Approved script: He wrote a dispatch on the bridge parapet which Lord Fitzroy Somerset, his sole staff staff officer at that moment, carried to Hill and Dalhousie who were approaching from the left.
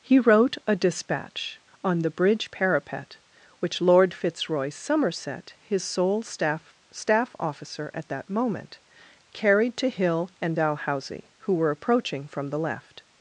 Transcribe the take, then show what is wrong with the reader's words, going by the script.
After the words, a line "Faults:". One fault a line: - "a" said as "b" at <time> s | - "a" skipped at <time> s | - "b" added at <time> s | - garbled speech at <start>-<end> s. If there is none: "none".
He wrote a dispatch on the bridge parapet which Lord Fitzroy Somerset, his sole staff staff officer at that moment, carried to Hill and Dalhousie who were approaching from the left.
Faults:
none